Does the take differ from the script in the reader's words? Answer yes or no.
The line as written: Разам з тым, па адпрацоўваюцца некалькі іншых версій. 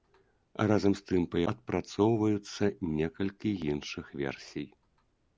no